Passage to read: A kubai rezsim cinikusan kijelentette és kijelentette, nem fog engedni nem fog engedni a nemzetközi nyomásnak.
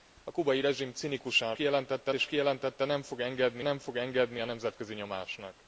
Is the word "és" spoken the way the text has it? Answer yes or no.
yes